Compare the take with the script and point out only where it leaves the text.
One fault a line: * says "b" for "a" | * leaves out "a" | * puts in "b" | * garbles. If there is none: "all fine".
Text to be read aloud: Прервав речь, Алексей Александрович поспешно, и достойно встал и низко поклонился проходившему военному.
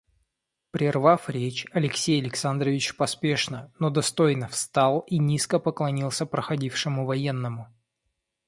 * says "но" for "и"